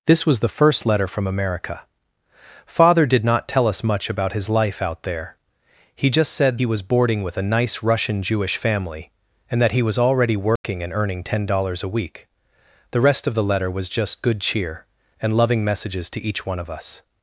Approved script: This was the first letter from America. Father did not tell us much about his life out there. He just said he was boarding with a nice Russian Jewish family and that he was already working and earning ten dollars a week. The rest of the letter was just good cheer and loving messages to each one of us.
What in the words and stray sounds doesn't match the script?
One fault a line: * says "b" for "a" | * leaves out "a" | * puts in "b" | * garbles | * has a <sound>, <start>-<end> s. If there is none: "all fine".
* has a dropout, 10.6-10.6 s